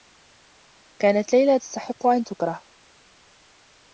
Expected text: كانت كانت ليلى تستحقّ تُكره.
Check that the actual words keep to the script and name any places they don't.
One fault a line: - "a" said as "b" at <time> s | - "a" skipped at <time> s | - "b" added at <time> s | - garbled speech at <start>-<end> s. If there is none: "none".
- "كانت" skipped at 1.3 s
- "أن" added at 2.1 s